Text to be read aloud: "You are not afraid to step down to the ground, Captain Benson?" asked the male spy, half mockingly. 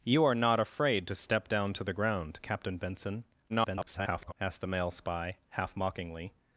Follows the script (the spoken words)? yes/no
no